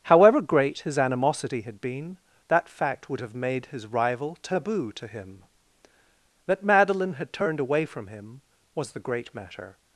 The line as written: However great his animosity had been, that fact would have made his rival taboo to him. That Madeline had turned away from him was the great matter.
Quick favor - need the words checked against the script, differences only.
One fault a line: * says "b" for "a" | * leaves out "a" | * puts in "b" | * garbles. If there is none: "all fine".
all fine